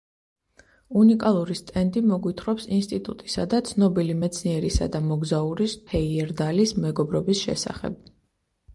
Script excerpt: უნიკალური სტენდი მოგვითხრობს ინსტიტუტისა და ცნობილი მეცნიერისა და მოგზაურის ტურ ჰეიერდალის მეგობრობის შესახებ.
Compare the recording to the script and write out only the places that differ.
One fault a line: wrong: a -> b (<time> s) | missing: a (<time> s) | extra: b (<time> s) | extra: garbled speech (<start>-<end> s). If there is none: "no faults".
missing: ტურ (5.8 s)